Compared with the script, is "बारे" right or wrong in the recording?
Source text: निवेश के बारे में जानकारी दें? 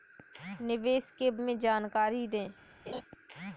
wrong